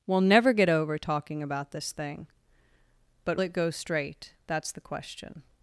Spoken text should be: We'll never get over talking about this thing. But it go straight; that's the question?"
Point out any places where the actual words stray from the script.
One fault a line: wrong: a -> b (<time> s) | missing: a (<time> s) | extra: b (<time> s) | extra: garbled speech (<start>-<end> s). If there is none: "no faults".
no faults